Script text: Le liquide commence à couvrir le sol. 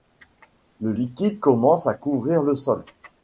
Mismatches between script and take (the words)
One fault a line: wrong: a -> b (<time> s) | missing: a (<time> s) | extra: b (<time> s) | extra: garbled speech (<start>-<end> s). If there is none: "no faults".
no faults